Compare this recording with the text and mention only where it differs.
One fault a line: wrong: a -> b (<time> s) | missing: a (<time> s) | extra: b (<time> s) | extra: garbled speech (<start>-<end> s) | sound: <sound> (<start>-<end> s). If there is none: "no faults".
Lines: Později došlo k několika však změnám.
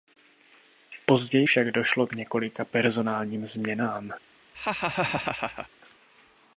extra: však (1.4 s)
wrong: však -> personálním (2.6 s)
sound: laugh (4.5-5.7 s)